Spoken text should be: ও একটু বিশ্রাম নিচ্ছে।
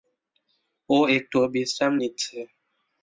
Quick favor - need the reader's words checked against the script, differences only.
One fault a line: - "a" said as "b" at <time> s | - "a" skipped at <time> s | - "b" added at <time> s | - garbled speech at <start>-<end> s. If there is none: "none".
none